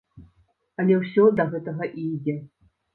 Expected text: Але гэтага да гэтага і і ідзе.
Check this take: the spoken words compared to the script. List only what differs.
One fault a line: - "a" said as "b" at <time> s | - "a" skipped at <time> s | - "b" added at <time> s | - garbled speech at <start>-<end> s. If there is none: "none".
- "гэтага" said as "ўсё" at 1.0 s
- "і" skipped at 2.1 s